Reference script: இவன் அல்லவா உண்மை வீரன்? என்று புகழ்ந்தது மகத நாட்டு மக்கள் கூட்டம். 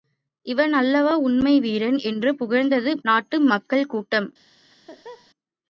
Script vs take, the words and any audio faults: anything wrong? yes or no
yes